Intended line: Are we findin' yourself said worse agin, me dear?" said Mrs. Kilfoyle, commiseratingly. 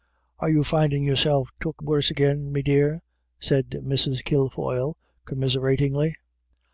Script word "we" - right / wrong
wrong